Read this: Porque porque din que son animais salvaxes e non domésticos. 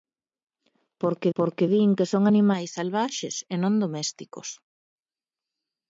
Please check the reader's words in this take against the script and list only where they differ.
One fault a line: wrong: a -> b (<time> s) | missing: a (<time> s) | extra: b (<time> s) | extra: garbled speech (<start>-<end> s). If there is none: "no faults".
no faults